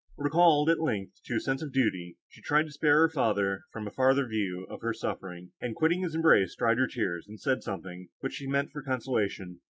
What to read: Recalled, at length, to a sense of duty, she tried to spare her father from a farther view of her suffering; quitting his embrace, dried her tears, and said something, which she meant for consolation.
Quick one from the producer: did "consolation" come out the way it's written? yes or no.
yes